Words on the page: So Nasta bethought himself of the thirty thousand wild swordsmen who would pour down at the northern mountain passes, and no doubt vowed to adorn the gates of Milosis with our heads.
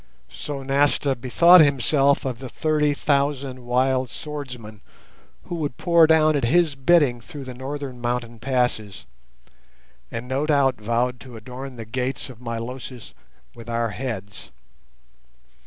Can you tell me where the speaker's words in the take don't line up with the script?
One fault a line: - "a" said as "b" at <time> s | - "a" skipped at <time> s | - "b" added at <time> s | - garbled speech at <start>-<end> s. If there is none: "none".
- "his bidding through" added at 6.5 s